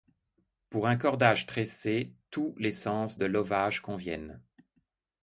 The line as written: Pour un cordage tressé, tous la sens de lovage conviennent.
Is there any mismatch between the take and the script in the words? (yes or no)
yes